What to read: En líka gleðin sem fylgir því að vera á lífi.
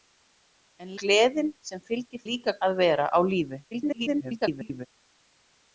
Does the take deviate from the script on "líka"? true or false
true